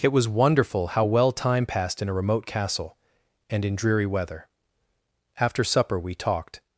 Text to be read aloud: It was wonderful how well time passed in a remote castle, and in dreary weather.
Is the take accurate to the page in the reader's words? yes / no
no